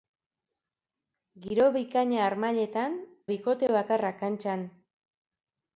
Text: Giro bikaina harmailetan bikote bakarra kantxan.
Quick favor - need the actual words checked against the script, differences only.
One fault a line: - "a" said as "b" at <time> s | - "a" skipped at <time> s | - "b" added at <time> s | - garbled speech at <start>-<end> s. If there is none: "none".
none